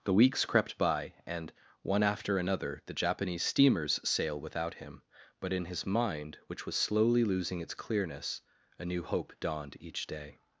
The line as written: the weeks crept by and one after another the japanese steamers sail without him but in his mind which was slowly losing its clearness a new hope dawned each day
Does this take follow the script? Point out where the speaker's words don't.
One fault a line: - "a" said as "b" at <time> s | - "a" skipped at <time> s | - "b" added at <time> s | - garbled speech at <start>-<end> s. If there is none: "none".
none